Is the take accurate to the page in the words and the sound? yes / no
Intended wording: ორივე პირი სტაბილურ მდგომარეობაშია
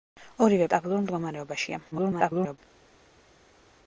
no